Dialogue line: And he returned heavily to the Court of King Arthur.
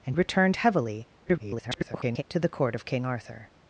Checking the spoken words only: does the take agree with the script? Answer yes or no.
no